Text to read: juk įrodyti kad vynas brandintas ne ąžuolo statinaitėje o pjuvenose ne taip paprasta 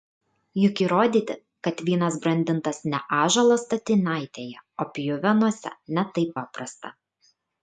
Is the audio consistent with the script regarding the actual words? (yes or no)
yes